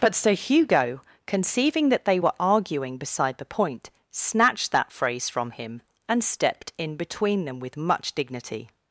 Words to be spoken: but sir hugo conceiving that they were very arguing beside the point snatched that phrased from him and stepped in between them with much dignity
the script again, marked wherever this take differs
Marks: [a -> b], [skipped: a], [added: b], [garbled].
but sir hugo conceiving that they were [skipped: very] arguing beside the point snatched that [phrased -> phrase] from him and stepped in between them with much dignity